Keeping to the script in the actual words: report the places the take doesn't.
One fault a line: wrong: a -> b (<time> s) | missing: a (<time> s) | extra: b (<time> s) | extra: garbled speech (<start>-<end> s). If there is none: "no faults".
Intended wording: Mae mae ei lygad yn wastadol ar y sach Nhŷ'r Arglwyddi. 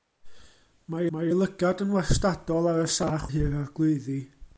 no faults